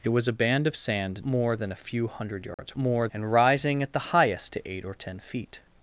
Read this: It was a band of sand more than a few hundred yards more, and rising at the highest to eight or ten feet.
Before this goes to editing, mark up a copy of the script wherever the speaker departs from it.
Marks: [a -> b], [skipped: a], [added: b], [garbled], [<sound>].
It was a band of sand more than a few hundred yards [dropout] more, and rising at the highest to eight or ten feet.